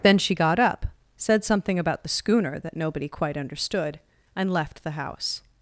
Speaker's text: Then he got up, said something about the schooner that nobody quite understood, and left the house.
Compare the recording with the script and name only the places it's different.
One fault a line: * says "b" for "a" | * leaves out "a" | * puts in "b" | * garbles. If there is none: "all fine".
* says "she" for "he"